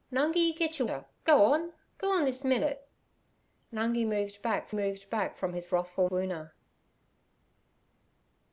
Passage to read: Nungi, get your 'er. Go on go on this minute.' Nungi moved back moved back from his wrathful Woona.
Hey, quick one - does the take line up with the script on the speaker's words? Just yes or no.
yes